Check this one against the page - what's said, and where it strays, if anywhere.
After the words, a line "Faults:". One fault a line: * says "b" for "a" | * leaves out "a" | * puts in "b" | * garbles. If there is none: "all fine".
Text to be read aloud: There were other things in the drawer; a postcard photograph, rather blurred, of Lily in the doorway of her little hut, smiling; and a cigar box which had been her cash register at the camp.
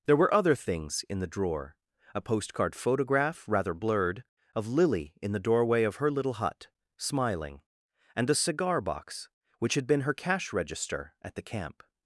There were other things in the drawer; a postcard photograph, rather blurred, of Lily in the doorway of her little hut, smiling; and a cigar box which had been her cash register at the camp.
Faults:
all fine